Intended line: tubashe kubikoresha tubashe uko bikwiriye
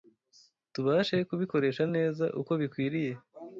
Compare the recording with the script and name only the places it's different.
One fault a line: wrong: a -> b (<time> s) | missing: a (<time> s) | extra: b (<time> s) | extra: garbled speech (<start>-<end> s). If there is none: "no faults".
wrong: tubashe -> neza (1.9 s)